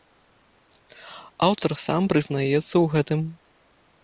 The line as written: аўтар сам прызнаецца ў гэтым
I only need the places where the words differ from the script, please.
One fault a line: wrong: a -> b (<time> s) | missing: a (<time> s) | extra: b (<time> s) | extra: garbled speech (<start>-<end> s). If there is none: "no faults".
no faults